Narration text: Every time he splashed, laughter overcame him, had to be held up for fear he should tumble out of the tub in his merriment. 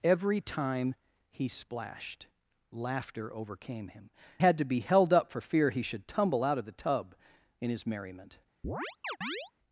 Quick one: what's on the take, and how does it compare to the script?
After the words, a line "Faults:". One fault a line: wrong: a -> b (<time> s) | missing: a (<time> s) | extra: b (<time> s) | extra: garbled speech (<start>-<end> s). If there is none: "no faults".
Every time he splashed, laughter overcame him, had to be held up for fear he should tumble out of the tub in his merriment.
Faults:
no faults